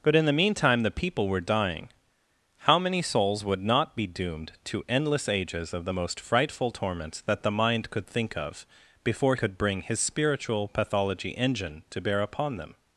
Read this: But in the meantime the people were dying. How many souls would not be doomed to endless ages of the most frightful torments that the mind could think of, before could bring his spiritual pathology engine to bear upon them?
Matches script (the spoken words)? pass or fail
pass